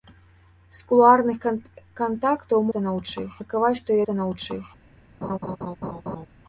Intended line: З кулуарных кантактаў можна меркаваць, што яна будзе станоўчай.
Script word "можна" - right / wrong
wrong